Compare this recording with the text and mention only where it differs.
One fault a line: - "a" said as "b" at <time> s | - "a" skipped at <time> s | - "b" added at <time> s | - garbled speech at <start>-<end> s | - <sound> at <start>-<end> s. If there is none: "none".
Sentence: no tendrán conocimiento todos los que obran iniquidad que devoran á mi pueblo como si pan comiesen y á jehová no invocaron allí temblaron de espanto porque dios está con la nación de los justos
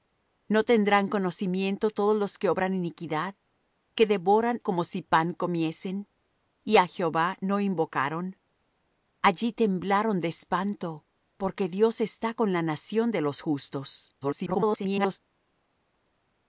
- "á mi pueblo" skipped at 4.6 s
- garbled speech at 14.2-15.2 s